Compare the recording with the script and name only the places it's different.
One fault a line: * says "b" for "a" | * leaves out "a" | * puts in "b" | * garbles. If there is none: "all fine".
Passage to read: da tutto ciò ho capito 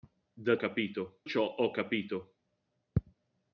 * says "capito" for "tutto"